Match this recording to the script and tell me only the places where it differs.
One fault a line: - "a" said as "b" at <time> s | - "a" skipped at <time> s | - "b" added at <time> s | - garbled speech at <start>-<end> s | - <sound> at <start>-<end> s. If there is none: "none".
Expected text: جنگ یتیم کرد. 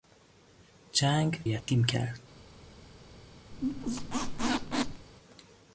- dropout at 1.6-1.7 s
- squeak at 3.5-5.1 s